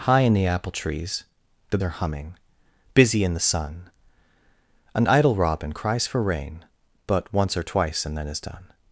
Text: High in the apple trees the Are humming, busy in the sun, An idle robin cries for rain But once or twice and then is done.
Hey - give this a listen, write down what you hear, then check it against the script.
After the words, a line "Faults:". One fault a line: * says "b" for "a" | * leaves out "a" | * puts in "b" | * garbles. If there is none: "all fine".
High in the apple trees the Are humming, busy in the sun, An idle robin cries for rain But once or twice and then is done.
Faults:
all fine